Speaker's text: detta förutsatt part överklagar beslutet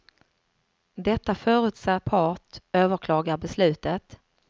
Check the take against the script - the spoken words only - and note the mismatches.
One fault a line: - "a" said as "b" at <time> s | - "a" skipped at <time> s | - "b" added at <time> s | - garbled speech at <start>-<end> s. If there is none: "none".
none